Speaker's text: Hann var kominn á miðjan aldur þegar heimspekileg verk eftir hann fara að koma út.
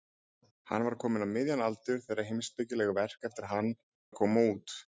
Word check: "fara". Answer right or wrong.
wrong